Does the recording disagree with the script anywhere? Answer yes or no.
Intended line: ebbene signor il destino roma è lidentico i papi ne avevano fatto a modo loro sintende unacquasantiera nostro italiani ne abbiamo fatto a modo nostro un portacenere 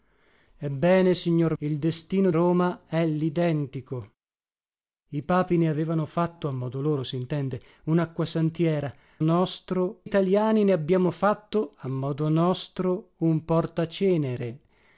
no